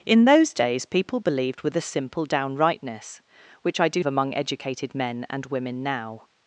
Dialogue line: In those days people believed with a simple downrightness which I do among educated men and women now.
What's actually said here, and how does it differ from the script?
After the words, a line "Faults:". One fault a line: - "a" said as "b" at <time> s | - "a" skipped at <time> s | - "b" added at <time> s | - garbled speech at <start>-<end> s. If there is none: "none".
In those days people believed with a simple downrightness which I do among educated men and women now.
Faults:
none